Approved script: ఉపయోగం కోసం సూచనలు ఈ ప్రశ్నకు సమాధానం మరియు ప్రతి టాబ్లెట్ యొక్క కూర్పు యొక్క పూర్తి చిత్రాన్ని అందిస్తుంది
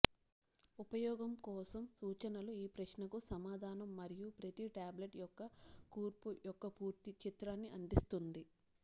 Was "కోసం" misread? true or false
false